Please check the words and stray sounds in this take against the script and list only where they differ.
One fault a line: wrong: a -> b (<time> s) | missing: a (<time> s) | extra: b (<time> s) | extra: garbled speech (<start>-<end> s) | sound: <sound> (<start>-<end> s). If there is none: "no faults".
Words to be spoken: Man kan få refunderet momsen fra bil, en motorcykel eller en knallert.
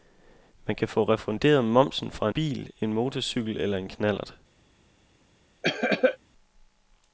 sound: cough (5.6-6.2 s)